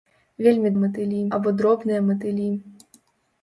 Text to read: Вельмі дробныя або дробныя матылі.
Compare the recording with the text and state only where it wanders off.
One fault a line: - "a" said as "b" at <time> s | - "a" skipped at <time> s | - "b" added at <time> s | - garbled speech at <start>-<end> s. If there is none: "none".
- "дробныя" said as "матылі" at 0.8 s